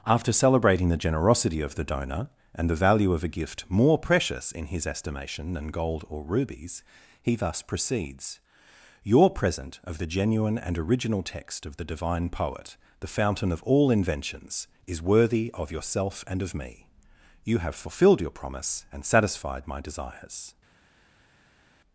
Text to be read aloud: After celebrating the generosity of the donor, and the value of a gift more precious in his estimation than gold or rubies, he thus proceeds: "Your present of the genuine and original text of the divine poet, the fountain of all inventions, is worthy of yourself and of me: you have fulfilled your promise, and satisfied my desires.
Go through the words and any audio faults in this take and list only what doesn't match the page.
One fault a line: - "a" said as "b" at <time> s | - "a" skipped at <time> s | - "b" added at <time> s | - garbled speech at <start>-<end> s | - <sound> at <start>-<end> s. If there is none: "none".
none